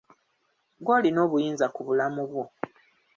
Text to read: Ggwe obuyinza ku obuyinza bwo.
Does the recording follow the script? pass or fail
fail